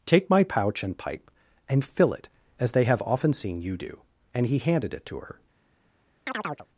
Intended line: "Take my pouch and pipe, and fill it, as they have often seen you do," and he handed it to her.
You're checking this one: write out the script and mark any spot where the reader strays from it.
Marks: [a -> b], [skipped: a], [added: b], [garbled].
"Take my pouch and pipe, and fill it, as they have often seen you do," and he handed it to her.